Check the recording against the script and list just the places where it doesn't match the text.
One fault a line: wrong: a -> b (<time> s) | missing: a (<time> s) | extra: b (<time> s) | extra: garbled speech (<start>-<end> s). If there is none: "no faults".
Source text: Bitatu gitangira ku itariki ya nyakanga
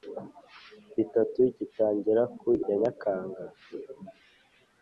missing: itariki (2.5 s)